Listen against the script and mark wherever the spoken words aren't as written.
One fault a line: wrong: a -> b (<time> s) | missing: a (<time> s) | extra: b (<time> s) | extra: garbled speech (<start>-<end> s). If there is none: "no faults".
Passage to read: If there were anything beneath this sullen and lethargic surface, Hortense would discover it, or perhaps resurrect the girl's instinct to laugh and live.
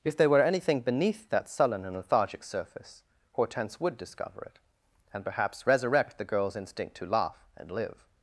wrong: this -> that (1.3 s)
wrong: or -> and (5.1 s)